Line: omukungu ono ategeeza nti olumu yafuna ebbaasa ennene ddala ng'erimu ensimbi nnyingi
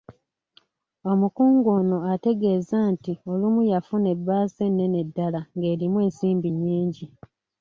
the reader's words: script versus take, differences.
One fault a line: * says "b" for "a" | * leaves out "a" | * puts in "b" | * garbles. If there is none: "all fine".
all fine